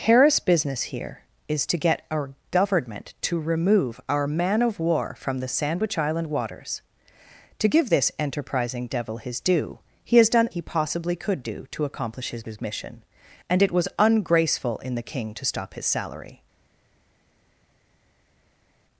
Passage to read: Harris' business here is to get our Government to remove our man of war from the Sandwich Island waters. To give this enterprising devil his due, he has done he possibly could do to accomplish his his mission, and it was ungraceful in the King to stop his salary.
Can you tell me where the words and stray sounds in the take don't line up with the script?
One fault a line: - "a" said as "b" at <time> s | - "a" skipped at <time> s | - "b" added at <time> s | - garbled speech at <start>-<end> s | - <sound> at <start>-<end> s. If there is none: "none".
none